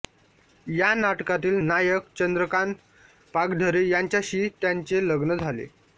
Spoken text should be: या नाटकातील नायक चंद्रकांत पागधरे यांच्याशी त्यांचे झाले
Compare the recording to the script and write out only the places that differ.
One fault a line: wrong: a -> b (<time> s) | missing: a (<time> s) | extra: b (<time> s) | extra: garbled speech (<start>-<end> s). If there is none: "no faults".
extra: लग्न (5.1 s)